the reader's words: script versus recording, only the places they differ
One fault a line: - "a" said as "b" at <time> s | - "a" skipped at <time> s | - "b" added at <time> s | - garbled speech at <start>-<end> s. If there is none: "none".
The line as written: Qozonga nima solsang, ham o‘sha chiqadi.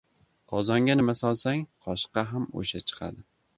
- "qoshiqqa" added at 1.9 s